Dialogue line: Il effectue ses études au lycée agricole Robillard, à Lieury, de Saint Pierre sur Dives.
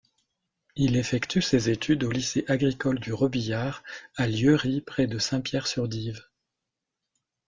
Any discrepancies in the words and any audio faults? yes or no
yes